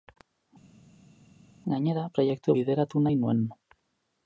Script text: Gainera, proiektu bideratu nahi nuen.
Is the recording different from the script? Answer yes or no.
no